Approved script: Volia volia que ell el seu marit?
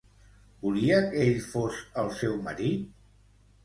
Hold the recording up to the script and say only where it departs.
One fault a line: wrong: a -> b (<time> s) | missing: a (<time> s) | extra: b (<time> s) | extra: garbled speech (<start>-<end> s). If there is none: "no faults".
missing: volia (1.0 s)
extra: fos (1.5 s)